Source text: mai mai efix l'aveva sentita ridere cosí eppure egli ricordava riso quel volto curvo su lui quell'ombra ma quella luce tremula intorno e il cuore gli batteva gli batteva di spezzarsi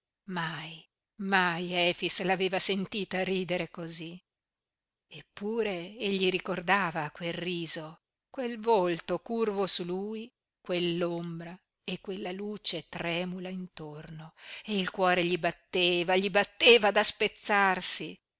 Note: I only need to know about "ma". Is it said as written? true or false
false